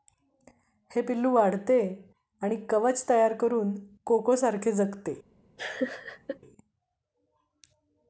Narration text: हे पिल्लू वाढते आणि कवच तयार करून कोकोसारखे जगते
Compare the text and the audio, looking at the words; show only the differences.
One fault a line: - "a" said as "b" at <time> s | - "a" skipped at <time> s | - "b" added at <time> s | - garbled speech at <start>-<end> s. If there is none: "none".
none